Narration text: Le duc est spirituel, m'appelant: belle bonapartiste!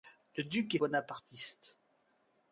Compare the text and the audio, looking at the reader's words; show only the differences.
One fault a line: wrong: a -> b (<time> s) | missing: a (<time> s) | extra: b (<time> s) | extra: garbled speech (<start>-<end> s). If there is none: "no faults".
missing: spirituel m'appelant belle (0.8 s)